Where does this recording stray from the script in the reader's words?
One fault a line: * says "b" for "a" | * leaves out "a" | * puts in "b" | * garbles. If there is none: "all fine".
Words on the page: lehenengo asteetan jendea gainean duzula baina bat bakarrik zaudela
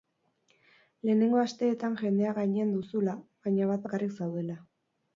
all fine